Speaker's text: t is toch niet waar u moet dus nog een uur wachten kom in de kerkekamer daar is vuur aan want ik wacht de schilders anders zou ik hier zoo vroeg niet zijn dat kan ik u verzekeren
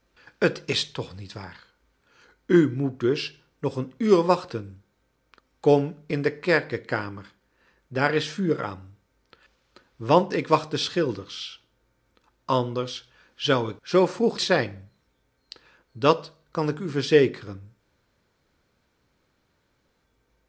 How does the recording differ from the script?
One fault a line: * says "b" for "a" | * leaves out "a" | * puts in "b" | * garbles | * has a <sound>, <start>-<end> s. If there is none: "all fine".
* leaves out "hier"
* leaves out "niet"